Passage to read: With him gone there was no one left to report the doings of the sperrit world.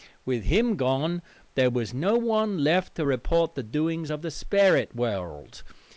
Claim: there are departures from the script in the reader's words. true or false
false